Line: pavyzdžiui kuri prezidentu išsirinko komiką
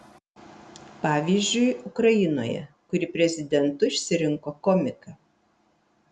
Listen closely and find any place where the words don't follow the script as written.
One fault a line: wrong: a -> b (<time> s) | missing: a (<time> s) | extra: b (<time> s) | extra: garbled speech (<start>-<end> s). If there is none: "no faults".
extra: ukrainoje (1.9 s)